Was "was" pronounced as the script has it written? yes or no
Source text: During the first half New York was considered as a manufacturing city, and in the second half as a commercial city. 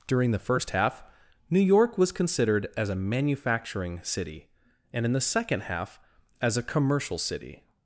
yes